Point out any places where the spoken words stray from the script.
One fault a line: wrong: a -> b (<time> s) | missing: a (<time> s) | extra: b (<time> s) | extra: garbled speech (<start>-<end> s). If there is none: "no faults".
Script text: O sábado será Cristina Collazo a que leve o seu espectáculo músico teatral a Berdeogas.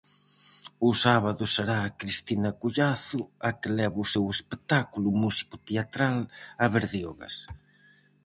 no faults